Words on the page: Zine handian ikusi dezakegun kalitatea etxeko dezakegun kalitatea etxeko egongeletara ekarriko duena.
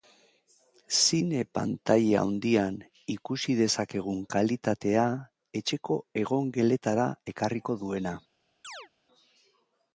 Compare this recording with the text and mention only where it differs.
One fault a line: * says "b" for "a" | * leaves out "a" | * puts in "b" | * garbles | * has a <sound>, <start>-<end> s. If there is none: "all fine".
* puts in "pantaila"
* leaves out "dezakegun kalitatea etxeko"
* has a chirp, 8.6-8.9 s